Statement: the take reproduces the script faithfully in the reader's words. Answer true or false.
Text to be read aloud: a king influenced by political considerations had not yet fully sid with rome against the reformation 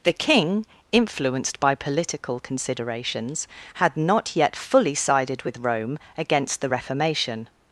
false